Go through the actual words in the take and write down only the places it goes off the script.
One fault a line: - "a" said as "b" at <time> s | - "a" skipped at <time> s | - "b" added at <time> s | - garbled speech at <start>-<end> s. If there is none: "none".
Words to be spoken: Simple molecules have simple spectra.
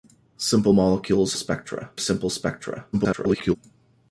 - "have" said as "spectra" at 1.3 s
- garbled speech at 2.9-3.6 s